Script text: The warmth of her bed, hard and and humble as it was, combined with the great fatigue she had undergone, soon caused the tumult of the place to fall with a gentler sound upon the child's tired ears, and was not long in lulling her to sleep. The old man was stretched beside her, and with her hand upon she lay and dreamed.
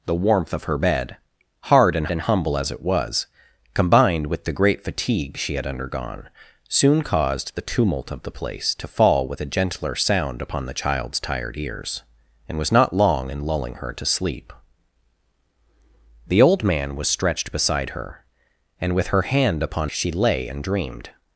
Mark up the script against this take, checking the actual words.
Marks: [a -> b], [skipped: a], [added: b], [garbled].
The warmth of her bed, hard and and humble as it was, combined with the great fatigue she had undergone, soon caused the tumult of the place to fall with a gentler sound upon the child's tired ears, and was not long in lulling her to sleep. The old man was stretched beside her, and with her hand upon she lay and dreamed.